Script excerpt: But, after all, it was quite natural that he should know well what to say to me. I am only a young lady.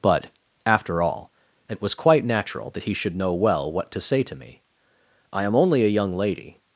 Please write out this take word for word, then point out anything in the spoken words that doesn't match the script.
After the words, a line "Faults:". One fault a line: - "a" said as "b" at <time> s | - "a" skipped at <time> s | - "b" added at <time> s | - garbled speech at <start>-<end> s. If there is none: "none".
But, after all, it was quite natural that he should know well what to say to me. I am only a young lady.
Faults:
none